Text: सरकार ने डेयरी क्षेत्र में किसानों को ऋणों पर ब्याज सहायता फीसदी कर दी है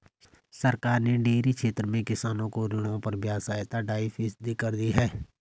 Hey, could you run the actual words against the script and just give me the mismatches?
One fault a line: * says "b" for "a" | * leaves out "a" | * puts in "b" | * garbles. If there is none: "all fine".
* puts in "ढाई"